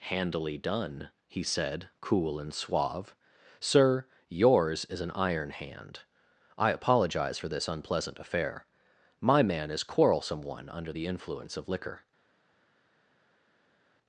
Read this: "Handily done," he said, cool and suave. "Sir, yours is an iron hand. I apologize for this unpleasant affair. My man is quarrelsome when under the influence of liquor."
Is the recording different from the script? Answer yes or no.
yes